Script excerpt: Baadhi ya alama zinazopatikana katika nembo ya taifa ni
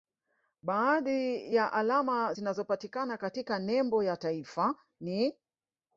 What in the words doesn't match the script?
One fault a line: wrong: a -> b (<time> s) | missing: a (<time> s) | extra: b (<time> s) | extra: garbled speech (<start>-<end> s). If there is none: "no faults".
no faults